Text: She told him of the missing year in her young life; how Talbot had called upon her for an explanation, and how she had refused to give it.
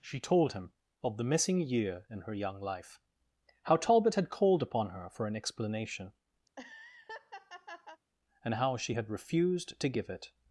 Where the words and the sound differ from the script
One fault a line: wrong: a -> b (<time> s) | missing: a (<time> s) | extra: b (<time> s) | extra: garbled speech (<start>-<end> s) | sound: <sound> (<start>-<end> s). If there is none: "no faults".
sound: laugh (6.5-8.0 s)